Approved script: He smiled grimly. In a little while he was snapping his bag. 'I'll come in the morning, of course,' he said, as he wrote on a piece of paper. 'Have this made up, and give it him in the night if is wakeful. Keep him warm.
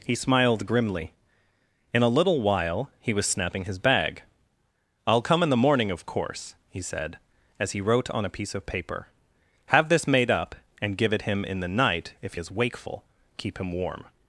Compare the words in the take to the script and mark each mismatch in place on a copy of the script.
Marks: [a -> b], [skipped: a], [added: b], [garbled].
He smiled grimly. In a little while he was snapping his bag. 'I'll come in the morning, of course,' he said, as he wrote on a piece of paper. 'Have this made up, and give it him in the night if is wakeful. Keep him warm.